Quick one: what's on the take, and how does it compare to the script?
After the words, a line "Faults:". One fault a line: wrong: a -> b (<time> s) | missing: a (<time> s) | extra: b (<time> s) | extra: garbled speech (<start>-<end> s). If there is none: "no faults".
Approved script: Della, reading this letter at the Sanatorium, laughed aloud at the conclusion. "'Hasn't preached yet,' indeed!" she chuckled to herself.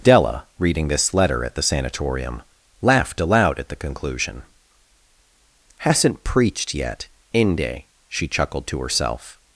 Della, reading this letter at the Sanatorium, laughed aloud at the conclusion. "'Hasn't preached yet,' inde!" she chuckled to herself.
Faults:
wrong: indeed -> inde (7.3 s)